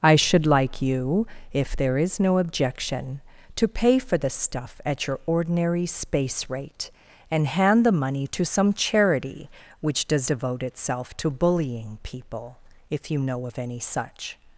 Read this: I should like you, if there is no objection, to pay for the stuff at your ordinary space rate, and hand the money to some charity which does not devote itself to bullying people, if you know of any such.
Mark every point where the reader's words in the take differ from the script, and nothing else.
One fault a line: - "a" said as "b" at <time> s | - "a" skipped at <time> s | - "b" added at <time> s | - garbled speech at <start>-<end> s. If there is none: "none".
- "not" skipped at 10.3 s